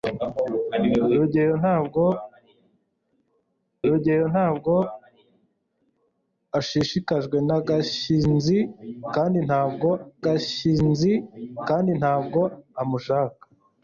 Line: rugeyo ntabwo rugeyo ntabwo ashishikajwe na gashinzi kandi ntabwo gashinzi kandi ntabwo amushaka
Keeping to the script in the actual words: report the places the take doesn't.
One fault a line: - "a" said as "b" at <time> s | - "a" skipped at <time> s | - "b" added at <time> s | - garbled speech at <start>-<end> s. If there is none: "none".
none